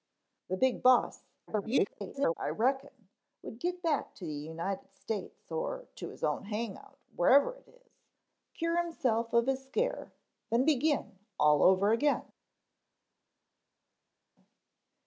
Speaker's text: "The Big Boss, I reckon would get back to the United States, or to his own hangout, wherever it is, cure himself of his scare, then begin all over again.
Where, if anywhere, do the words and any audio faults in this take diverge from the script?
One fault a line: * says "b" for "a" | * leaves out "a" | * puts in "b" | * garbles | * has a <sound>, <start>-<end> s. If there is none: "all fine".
* garbles